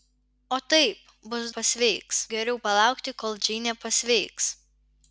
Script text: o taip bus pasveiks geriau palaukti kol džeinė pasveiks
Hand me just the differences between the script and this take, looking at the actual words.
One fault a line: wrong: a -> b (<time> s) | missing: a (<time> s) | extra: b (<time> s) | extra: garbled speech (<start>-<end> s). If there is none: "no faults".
no faults